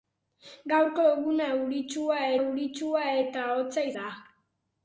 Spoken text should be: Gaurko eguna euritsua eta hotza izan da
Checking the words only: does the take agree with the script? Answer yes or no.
no